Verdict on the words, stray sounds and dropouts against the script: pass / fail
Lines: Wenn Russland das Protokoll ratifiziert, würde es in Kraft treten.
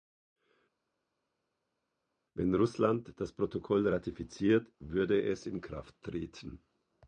pass